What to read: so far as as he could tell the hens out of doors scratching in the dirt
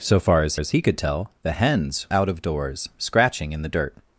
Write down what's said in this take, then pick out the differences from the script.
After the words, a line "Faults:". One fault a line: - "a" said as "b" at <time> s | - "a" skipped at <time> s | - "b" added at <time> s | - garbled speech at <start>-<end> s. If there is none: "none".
so far as as he could tell the hens out of doors scratching in the dirt
Faults:
none